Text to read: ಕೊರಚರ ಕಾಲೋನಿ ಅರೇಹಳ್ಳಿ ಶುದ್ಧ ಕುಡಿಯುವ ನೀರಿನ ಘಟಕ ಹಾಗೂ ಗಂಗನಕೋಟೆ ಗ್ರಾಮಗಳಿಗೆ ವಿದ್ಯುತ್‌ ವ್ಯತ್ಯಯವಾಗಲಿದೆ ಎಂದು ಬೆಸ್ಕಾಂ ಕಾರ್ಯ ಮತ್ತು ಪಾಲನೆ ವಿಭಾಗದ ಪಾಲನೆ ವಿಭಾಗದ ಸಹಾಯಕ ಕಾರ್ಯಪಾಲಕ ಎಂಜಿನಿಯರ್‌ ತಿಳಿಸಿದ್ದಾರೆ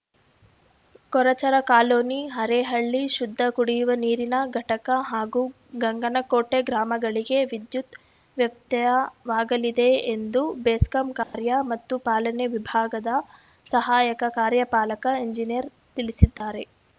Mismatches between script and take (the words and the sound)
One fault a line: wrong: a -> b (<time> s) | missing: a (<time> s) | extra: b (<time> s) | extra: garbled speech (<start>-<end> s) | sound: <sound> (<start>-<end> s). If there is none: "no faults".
sound: dropout (11.2-11.3 s)
missing: ಪಾಲನೆ ವಿಭಾಗದ (13.1 s)
sound: dropout (16.4-16.4 s)